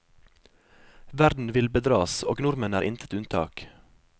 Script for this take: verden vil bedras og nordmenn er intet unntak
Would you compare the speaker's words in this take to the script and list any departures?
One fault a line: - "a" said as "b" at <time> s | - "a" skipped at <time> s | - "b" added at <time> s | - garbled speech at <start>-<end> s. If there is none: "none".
none